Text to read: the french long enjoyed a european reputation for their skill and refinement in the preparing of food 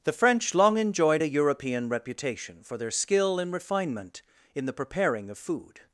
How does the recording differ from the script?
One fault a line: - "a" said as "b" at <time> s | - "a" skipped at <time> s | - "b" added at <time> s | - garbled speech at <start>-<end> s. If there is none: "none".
none